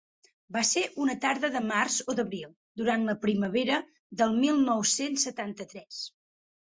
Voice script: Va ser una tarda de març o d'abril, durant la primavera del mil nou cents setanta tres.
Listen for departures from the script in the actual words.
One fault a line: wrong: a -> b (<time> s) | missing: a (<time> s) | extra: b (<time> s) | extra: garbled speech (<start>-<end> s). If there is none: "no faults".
no faults